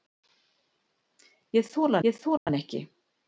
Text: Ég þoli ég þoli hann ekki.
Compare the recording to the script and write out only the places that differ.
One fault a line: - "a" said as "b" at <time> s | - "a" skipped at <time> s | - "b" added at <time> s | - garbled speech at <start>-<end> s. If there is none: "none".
none